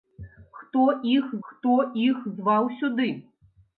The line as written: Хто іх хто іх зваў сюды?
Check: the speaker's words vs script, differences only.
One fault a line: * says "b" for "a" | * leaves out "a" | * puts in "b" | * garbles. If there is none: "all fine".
all fine